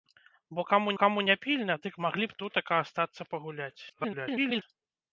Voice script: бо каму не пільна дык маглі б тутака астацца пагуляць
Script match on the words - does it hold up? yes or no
no